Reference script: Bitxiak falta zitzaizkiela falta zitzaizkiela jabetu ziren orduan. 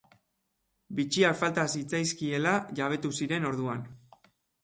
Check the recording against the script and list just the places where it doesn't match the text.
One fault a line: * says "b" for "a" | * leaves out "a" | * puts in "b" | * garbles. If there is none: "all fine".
* leaves out "falta zitzaizkiela"